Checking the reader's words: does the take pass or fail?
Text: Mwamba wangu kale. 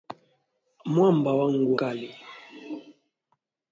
pass